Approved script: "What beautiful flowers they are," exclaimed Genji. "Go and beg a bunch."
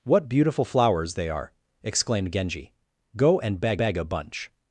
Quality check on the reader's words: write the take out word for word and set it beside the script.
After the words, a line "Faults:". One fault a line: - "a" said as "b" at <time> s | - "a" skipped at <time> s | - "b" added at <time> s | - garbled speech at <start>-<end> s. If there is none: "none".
"What beautiful flowers they are," exclaimed Genji. "Go and beg beg a bunch."
Faults:
- "beg" added at 3.8 s